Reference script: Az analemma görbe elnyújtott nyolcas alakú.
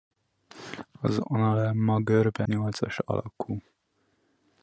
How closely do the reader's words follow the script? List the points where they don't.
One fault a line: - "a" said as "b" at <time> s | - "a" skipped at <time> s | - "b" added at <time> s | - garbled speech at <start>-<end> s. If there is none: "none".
- "elnyújtott" skipped at 2.4 s